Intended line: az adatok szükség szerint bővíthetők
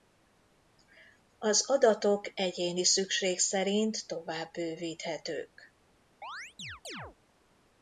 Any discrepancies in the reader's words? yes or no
yes